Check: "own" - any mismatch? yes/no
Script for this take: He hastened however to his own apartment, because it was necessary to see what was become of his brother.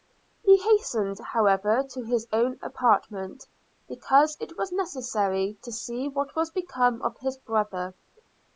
no